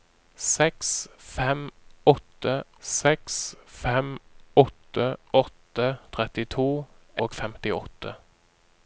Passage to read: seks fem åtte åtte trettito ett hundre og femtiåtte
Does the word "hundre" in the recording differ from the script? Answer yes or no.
yes